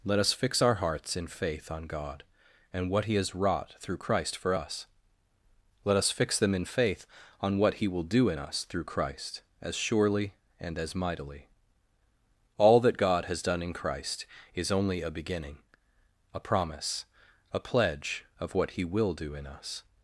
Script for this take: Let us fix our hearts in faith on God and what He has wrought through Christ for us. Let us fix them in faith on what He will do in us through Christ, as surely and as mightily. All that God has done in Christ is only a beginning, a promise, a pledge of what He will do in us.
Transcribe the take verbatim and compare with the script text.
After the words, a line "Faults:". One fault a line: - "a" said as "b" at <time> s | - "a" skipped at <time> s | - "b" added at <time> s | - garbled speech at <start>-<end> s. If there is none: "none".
Let us fix our hearts in faith on God and what He has wrought through Christ for us. Let us fix them in faith on what He will do in us through Christ, as surely and as mightily. All that God has done in Christ is only a beginning, a promise, a pledge of what He will do in us.
Faults:
none